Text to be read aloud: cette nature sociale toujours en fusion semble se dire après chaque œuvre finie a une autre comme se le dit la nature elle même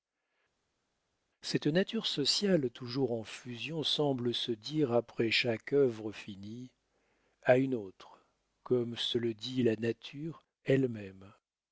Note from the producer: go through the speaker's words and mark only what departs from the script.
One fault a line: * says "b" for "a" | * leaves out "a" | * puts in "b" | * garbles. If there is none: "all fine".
all fine